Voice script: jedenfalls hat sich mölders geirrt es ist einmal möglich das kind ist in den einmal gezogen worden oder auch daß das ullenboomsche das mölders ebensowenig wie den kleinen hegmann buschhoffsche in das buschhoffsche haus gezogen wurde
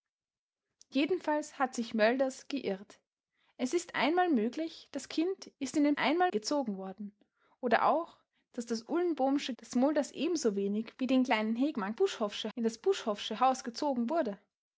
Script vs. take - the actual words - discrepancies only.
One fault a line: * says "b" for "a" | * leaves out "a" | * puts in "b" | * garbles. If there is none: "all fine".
all fine